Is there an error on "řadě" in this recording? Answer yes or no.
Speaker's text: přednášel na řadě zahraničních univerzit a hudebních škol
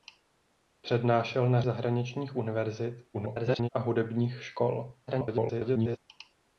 yes